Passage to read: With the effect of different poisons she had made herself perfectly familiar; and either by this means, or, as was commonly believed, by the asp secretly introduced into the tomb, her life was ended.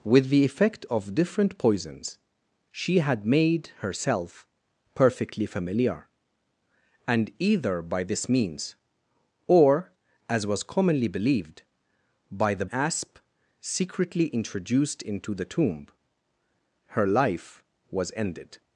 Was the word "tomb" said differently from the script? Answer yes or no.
no